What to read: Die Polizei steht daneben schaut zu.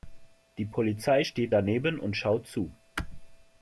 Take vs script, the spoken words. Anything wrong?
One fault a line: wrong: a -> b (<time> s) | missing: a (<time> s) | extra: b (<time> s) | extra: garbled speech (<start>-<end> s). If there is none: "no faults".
extra: und (2.0 s)